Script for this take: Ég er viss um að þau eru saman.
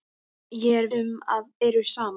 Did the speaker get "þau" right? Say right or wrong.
wrong